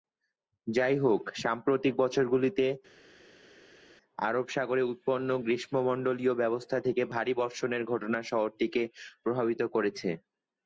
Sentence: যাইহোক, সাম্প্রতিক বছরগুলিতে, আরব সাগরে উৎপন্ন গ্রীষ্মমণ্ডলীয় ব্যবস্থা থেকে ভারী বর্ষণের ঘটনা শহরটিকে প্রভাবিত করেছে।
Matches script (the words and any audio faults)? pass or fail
pass